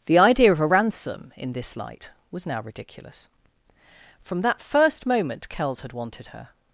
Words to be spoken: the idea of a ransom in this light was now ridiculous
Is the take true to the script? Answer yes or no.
no